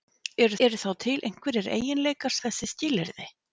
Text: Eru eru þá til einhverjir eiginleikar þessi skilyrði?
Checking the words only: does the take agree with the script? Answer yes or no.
yes